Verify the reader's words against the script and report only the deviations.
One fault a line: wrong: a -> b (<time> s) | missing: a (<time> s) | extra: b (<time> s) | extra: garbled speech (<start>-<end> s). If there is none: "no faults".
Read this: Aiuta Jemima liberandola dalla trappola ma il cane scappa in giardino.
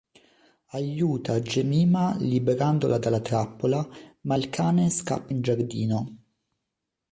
no faults